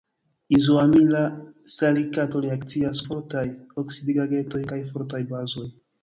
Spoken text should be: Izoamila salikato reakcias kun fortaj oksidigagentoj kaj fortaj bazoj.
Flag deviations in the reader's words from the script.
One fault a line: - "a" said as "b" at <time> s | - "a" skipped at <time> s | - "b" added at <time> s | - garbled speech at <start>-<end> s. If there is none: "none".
- "kun" skipped at 3.0 s